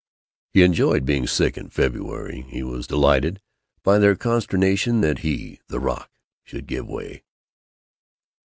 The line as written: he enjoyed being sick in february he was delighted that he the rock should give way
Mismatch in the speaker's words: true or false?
true